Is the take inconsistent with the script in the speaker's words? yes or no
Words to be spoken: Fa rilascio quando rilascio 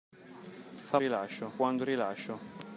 no